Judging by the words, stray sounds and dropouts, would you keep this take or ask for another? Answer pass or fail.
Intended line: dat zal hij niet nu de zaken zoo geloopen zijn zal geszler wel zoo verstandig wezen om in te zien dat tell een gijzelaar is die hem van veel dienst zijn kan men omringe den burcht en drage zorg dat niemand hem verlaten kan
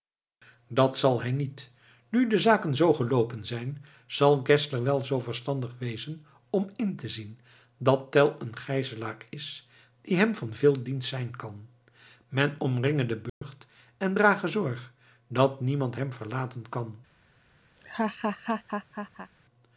fail